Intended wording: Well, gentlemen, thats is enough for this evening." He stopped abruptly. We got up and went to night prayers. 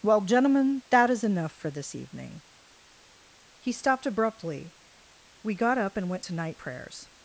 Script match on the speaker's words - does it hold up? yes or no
no